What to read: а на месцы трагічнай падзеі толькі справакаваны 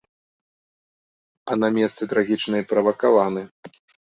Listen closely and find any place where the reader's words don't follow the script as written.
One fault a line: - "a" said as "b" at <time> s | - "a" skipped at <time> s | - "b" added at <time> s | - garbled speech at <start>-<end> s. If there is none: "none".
- "падзеі толькі" skipped at 2.6 s